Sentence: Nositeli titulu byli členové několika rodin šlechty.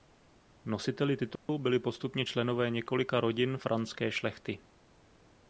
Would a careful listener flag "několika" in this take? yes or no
no